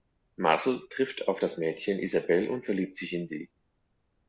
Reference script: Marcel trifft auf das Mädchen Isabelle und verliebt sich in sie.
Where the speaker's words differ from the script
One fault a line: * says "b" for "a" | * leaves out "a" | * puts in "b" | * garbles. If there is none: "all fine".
all fine